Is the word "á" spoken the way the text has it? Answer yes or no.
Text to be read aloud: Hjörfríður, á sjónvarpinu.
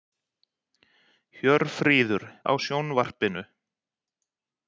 yes